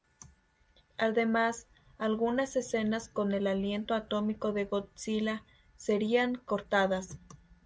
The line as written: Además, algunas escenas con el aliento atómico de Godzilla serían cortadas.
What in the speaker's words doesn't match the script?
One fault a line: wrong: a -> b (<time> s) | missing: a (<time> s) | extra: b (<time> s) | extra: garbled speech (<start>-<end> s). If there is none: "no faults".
no faults